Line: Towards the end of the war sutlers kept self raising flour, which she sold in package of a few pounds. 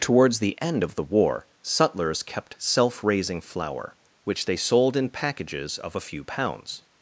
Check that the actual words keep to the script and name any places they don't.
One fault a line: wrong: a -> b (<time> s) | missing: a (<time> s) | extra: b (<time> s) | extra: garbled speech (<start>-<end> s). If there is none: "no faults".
wrong: she -> they (4.5 s)
wrong: package -> packages (5.1 s)